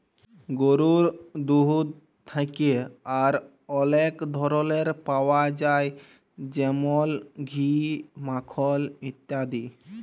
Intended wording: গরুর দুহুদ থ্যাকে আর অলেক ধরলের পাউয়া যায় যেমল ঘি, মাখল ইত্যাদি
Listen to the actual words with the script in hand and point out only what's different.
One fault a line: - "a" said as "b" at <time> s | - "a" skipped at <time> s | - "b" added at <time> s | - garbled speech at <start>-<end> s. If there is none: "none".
none